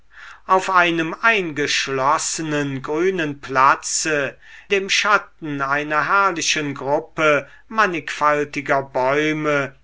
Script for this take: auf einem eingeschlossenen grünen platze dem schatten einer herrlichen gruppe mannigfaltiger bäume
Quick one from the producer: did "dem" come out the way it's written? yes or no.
yes